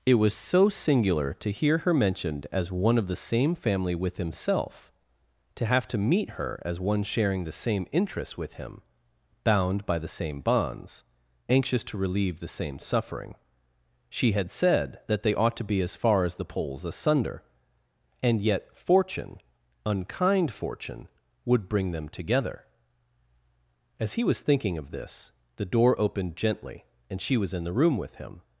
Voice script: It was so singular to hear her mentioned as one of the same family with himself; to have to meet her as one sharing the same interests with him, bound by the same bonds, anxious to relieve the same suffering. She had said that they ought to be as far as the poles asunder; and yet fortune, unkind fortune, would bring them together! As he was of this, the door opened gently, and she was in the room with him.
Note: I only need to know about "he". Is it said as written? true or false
true